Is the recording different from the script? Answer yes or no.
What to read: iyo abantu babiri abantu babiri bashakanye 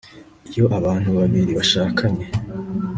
yes